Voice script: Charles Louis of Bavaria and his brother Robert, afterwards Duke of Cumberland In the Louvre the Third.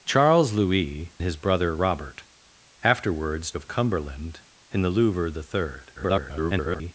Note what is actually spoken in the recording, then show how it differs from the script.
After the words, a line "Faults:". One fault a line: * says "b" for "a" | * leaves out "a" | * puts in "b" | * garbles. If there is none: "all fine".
Charles Louis his brother Robert, afterwards Of Cumberland In the Louvre the Third. [garbled]
Faults:
* leaves out "of Bavaria and"
* leaves out "Duke"
* garbles